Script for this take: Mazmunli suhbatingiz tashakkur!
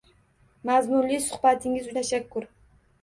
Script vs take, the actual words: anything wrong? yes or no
no